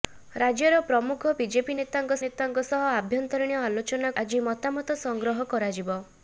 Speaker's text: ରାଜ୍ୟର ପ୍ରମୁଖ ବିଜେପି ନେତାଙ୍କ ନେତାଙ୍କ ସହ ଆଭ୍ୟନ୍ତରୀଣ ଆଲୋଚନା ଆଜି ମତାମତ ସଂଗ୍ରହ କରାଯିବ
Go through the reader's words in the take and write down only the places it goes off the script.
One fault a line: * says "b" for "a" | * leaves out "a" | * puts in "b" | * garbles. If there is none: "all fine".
all fine